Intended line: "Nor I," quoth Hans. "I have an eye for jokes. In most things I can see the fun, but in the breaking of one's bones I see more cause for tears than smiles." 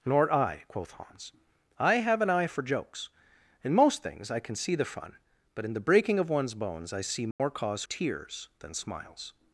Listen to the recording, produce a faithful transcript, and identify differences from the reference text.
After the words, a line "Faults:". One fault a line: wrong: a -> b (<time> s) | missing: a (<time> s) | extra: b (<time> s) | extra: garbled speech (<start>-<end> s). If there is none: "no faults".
"Nor I," quoth Hans. "I have an eye for jokes. In most things I can see the fun, but in the breaking of one's bones I see more cause tears than smiles."
Faults:
missing: for (7.8 s)